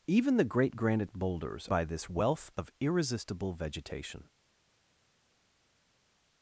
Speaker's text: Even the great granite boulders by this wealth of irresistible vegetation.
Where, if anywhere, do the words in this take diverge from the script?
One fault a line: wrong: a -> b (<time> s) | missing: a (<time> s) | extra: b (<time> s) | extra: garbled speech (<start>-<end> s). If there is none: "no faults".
no faults